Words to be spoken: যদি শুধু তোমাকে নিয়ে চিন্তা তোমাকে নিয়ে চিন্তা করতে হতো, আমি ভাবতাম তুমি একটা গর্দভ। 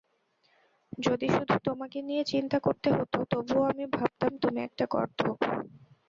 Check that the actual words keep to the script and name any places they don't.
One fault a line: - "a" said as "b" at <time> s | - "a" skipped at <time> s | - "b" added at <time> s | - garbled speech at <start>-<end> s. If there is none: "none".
- "তোমাকে নিয়ে চিন্তা" skipped at 2.6 s
- "তবুও" added at 3.3 s